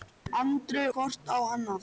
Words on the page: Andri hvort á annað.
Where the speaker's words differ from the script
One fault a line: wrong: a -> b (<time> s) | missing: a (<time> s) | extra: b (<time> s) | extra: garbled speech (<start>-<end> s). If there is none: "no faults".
no faults